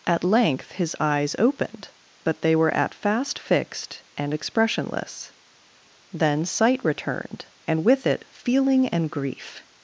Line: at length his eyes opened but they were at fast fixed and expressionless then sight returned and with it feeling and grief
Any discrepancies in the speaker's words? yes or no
no